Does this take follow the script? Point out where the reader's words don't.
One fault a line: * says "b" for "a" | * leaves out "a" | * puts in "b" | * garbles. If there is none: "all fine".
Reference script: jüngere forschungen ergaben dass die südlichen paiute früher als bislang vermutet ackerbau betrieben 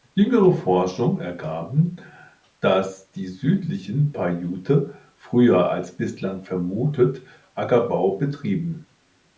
all fine